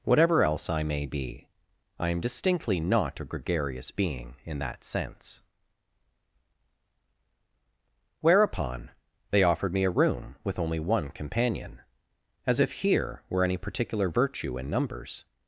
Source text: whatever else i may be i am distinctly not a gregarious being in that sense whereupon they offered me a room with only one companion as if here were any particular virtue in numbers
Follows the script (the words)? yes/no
yes